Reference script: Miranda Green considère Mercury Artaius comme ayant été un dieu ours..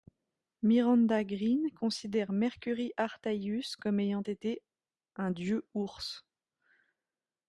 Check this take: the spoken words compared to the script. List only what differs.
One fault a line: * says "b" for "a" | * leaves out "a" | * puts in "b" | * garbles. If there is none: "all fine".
all fine